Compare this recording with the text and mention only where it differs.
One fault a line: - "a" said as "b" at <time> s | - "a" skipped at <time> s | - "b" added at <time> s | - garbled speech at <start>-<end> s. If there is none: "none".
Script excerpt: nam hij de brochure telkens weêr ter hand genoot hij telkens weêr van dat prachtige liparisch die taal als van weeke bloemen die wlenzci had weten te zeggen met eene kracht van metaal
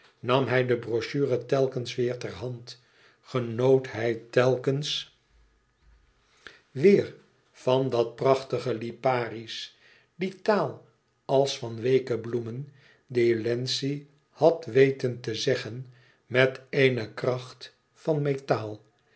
none